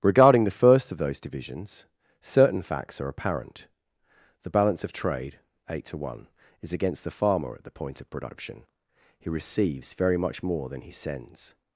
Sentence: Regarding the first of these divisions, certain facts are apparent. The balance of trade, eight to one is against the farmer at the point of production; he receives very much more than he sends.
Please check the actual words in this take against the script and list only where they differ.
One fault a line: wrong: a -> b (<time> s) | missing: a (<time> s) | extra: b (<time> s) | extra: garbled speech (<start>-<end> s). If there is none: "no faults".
wrong: these -> those (1.0 s)